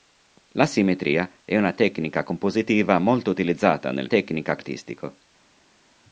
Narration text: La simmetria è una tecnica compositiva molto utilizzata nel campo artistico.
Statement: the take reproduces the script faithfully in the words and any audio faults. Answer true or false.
false